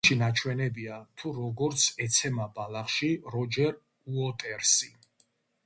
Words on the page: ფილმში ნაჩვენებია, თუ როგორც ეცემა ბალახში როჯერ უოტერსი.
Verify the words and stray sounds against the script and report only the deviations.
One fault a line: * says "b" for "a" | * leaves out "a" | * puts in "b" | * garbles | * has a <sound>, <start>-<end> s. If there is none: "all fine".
all fine